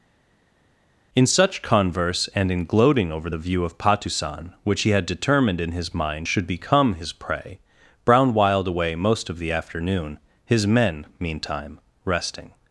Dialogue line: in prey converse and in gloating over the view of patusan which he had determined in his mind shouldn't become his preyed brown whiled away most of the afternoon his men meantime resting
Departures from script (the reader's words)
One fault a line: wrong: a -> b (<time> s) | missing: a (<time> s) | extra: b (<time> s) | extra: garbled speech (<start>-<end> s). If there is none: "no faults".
wrong: prey -> such (1.3 s)
wrong: shouldn't -> should (6.2 s)
wrong: preyed -> prey (7.1 s)